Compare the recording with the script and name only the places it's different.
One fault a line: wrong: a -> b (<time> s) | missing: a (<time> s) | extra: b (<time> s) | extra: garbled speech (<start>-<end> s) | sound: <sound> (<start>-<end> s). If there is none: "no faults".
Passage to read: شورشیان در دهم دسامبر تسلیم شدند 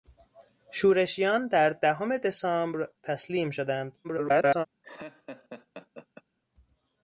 extra: garbled speech (4.0-4.7 s)
sound: laugh (4.8-6.2 s)